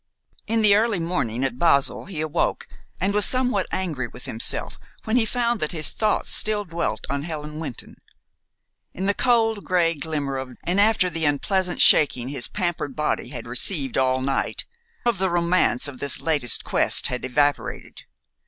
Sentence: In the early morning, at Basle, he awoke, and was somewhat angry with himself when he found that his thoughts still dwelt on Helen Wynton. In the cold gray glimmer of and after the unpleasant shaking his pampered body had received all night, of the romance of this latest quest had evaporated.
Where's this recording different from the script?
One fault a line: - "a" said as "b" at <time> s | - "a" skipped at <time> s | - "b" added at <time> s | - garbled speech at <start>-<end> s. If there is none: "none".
none